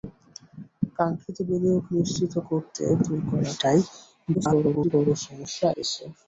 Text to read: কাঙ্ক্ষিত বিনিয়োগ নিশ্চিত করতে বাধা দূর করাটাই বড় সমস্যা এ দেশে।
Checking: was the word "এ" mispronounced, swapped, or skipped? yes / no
yes